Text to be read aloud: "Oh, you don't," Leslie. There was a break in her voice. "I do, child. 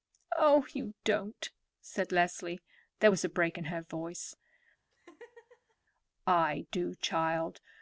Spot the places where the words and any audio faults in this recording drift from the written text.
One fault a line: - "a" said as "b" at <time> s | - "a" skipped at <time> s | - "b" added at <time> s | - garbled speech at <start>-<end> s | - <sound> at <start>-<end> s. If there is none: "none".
- "said" added at 1.8 s
- laugh at 4.9-5.8 s